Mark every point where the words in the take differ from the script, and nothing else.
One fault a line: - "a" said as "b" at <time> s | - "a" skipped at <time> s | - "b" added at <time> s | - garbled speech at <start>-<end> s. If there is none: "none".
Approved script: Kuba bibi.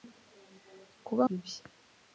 none